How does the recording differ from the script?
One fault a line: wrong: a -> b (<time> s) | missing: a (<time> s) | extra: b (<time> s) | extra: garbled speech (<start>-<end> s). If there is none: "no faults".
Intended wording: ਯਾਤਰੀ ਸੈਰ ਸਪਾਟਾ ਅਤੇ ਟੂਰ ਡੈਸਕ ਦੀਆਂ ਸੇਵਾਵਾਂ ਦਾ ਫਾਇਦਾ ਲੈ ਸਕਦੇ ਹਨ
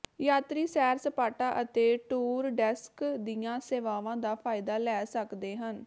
no faults